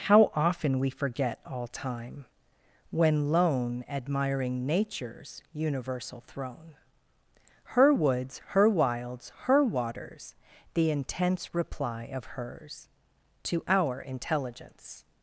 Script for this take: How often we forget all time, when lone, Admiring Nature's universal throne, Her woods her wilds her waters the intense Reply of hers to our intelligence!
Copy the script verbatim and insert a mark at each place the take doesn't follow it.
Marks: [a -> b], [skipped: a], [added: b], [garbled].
How often we forget all time, when lone, Admiring Nature's universal throne, Her woods her wilds her waters the intense Reply of hers to our intelligence!